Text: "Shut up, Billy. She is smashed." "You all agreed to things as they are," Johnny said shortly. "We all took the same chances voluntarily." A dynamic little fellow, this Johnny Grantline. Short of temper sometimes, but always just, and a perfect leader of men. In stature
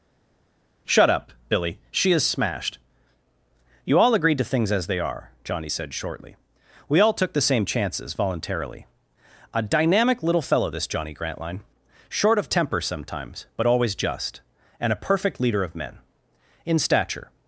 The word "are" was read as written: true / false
true